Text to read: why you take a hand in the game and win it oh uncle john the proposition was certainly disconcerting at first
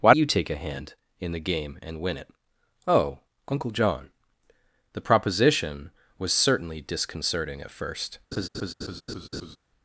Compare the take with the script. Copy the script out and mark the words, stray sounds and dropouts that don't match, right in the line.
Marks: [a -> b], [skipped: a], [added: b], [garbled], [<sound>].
why you take a hand in the game and win it oh uncle john the proposition was certainly disconcerting at first [laugh]